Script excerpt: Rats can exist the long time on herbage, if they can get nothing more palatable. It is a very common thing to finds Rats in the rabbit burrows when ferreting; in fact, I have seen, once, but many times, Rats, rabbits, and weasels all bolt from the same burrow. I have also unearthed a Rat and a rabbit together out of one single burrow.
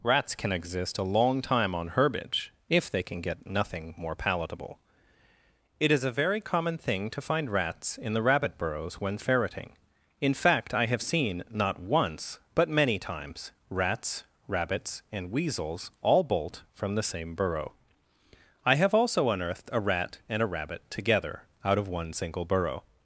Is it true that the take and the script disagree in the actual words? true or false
true